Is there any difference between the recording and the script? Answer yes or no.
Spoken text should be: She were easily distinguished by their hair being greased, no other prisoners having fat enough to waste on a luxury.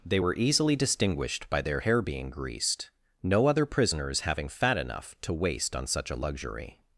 yes